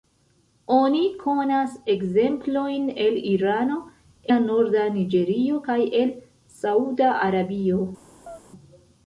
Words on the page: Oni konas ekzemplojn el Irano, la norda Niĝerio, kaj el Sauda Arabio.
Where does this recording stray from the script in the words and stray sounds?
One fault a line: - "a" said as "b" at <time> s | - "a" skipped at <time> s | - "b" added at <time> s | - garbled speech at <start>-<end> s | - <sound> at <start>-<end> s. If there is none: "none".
- chirp at 8.3-8.4 s